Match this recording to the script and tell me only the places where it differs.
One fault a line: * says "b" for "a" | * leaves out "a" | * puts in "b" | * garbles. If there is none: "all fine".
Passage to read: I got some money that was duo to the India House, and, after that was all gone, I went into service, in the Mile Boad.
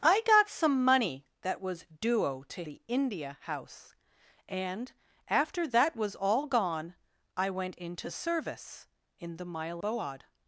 all fine